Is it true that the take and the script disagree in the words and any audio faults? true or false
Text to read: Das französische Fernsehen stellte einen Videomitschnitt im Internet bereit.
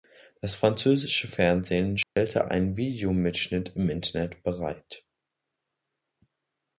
true